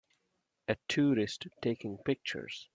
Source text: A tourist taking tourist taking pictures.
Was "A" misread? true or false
false